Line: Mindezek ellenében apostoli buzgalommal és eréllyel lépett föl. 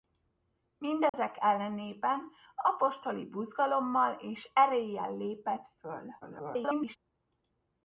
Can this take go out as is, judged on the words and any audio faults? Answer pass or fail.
fail